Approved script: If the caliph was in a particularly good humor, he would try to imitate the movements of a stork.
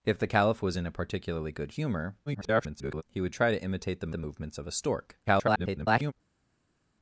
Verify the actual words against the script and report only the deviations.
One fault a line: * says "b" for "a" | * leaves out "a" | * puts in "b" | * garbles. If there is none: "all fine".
* garbles
* puts in "the"
* garbles